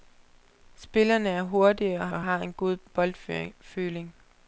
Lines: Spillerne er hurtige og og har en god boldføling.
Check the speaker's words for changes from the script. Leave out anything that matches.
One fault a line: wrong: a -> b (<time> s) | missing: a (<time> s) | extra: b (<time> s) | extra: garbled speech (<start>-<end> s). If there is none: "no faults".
no faults